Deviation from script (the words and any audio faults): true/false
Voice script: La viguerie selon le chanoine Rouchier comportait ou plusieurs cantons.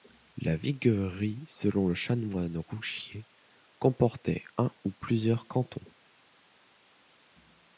true